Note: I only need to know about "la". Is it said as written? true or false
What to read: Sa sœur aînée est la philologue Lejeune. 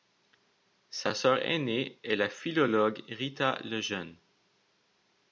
true